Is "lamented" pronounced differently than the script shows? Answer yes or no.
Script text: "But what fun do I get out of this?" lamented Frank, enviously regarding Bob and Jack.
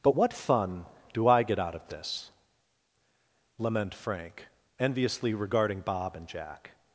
yes